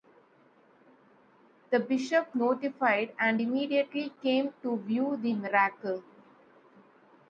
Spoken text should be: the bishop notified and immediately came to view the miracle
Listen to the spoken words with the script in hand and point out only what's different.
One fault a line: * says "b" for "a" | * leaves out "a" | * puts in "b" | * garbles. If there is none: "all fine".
all fine